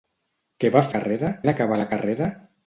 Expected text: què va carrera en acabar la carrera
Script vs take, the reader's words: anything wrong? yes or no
no